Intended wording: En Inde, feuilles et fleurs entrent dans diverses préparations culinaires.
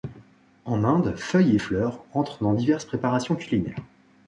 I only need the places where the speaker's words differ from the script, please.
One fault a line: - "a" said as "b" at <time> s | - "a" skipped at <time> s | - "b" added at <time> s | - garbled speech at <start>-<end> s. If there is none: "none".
none